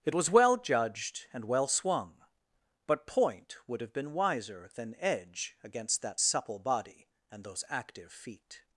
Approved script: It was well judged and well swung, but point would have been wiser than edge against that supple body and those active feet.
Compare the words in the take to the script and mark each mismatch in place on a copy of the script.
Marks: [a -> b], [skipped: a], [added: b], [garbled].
It was well judged and well swung, but point would have been wiser than edge against that supple body and those active feet.